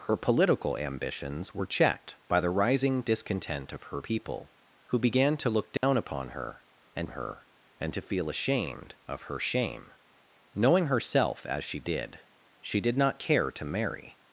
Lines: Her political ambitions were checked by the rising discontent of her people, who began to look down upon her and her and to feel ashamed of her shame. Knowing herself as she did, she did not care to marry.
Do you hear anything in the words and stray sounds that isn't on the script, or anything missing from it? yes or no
yes